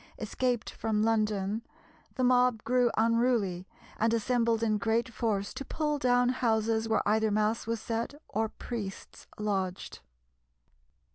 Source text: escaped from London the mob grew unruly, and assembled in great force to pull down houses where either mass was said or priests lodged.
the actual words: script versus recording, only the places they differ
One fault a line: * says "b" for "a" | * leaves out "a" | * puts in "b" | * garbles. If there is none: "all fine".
all fine